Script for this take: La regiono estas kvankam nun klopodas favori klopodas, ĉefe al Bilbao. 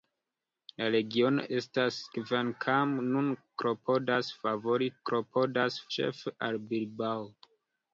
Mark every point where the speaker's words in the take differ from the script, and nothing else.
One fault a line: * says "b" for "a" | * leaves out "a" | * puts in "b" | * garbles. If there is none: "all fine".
all fine